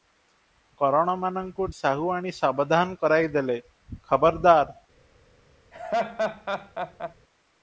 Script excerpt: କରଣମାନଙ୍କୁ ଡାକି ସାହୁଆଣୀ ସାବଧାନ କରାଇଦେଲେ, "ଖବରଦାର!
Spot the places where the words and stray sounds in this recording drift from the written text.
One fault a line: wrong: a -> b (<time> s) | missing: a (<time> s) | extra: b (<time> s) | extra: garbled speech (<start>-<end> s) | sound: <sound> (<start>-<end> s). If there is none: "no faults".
missing: ଡାକି (1.7 s)
sound: laugh (5.7-7.1 s)